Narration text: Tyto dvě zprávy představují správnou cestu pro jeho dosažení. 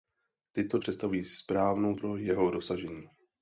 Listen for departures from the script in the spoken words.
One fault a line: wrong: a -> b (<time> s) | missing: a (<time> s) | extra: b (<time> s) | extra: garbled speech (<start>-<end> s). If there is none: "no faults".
missing: dvě zprávy (0.8 s)
missing: cestu (2.0 s)